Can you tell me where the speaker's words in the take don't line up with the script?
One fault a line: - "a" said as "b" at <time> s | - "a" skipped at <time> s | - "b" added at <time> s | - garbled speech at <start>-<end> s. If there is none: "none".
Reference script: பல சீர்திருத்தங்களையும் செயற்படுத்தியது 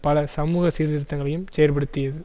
- "சமூக" added at 0.3 s